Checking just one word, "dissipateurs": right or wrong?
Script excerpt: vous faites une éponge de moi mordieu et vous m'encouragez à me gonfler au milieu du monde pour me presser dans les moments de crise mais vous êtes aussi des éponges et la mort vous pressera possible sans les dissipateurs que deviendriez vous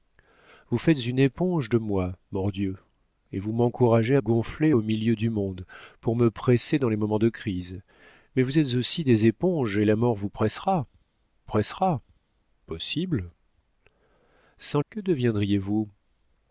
wrong